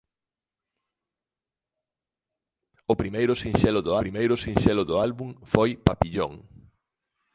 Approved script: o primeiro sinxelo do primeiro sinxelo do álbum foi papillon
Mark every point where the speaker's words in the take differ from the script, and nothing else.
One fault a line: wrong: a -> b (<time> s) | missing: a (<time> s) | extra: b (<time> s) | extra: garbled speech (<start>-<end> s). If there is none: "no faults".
no faults